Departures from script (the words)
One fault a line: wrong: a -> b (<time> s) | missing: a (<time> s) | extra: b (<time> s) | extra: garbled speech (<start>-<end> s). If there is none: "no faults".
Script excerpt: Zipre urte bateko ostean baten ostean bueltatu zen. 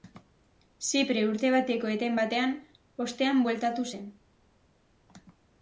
wrong: ostean -> eten (2.0 s)